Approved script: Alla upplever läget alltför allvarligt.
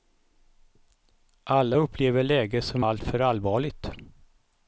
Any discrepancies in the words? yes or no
yes